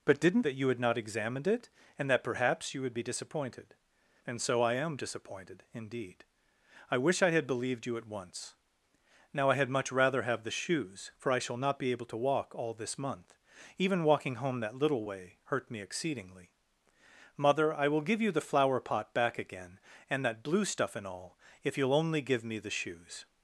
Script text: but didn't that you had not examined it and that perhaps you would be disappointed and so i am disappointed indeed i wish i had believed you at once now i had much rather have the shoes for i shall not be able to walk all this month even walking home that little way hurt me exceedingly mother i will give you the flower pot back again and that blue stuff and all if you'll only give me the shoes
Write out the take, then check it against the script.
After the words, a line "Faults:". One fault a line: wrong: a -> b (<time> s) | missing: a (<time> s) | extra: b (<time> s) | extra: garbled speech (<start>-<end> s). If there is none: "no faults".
but didn't that you had not examined it and that perhaps you would be disappointed and so i am disappointed indeed i wish i had believed you at once now i had much rather have the shoes for i shall not be able to walk all this month even walking home that little way hurt me exceedingly mother i will give you the flower pot back again and that blue stuff and all if you'll only give me the shoes
Faults:
no faults